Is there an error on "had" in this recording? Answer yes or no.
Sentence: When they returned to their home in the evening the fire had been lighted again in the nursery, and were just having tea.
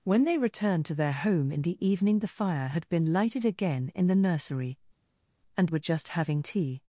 no